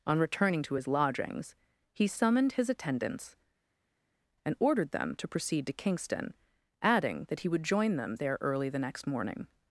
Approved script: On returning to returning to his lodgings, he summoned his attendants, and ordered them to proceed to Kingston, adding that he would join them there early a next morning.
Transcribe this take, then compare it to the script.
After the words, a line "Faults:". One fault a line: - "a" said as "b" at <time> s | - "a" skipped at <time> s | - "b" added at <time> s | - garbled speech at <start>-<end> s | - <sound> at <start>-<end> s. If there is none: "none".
On returning to his lodgings, he summoned his attendants, and ordered them to proceed to Kingston, adding that he would join them there early the next morning.
Faults:
- "returning to" skipped at 0.8 s
- "a" said as "the" at 8.7 s